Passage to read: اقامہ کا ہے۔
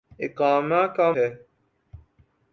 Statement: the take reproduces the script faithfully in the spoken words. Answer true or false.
true